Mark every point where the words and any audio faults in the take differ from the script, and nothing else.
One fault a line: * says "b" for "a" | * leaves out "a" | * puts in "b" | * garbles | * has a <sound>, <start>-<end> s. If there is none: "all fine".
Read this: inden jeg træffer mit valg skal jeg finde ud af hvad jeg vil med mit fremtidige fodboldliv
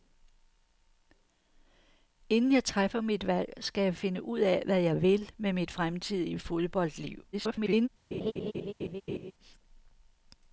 * garbles
* has a laugh, 8.1-9.3 s